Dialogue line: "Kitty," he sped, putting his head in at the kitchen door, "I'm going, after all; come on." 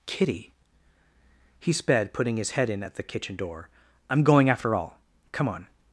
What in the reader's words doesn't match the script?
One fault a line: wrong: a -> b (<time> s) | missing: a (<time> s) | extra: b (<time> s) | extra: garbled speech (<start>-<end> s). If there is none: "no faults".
no faults